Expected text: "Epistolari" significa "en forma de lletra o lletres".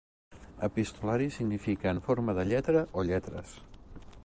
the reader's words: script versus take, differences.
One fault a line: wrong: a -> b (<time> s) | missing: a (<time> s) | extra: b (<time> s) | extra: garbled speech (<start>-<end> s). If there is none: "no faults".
no faults